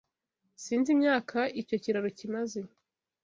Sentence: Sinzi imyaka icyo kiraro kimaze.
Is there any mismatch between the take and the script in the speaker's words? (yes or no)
no